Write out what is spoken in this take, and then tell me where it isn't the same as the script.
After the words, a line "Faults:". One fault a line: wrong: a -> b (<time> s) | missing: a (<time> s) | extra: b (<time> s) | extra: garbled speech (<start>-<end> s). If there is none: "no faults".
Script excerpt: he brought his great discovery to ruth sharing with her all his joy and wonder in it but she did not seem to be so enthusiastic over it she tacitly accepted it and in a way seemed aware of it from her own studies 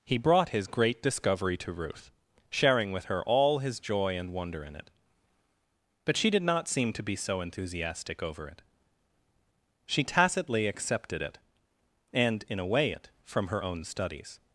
he brought his great discovery to ruth sharing with her all his joy and wonder in it but she did not seem to be so enthusiastic over it she tacitly accepted it and in a way it from her own studies
Faults:
missing: seemed aware of (12.9 s)